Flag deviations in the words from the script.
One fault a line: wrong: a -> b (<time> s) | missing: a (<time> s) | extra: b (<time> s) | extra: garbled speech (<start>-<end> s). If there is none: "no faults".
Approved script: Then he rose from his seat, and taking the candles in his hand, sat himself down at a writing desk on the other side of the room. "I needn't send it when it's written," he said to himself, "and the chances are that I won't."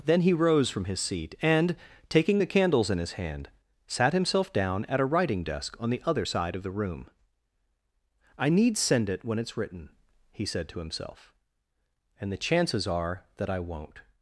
wrong: needn't -> need (8.5 s)